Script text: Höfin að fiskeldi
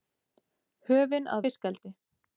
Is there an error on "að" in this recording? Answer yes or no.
no